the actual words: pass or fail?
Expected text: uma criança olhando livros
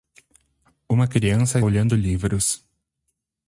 pass